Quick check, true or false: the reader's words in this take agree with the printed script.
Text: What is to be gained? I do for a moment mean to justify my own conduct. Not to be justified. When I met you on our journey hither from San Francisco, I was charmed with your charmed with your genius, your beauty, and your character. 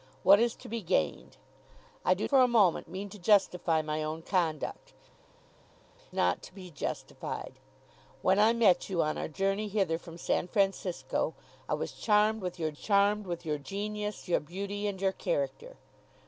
true